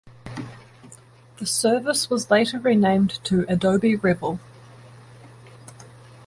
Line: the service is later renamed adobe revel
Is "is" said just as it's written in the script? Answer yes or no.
no